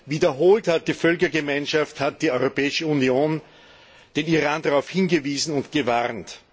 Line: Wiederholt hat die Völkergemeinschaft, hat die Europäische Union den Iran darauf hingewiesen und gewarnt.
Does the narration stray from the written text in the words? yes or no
no